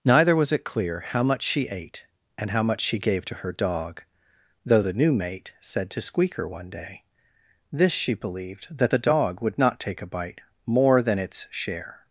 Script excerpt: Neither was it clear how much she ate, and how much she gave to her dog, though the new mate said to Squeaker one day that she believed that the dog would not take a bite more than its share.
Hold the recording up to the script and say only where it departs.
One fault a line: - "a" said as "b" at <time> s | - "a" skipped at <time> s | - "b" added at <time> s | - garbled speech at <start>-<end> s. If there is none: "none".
- "that" said as "this" at 7.7 s